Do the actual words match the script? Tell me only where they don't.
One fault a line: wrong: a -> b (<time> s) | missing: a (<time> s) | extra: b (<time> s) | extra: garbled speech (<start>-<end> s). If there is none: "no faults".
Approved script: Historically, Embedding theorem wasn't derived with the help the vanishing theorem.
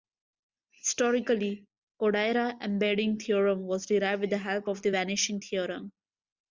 extra: Kodaira (2.0 s)
wrong: wasn't -> was (3.7 s)
extra: of (4.7 s)